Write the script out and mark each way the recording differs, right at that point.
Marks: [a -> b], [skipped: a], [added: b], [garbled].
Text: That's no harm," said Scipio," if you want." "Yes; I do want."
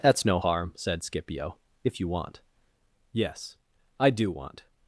That's no harm," said Scipio," if you want." "Yes; I do want."